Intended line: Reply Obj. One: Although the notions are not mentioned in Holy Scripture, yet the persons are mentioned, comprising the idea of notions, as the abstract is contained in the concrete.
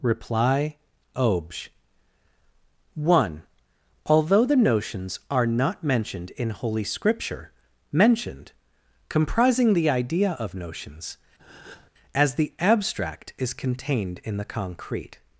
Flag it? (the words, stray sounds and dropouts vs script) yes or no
yes